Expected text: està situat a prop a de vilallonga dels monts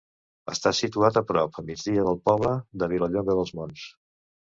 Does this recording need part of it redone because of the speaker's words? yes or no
yes